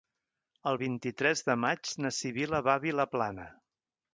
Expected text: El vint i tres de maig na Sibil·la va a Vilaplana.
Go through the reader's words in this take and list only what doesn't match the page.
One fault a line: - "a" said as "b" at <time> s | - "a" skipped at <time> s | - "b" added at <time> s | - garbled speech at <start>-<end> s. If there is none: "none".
none